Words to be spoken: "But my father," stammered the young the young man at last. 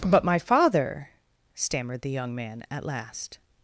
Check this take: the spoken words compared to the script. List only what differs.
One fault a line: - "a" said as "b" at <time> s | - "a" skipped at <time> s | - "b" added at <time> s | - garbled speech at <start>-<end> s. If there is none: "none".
- "the young" skipped at 2.3 s